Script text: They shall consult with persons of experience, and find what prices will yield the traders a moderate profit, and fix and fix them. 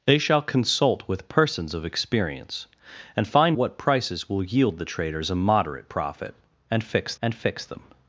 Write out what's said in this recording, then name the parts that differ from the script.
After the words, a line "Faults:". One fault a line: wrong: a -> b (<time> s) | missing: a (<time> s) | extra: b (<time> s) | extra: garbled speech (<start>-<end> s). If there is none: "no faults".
They shall consult with persons of experience, and find what prices will yield the traders a moderate profit, and fix and fix them.
Faults:
no faults